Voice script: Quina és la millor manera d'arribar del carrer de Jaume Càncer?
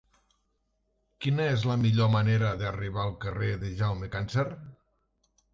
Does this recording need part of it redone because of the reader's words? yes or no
yes